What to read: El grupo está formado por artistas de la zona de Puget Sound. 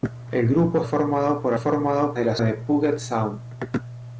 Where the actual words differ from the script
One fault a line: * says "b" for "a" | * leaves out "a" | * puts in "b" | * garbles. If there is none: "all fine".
* leaves out "está"
* says "formado" for "artistas"
* leaves out "zona"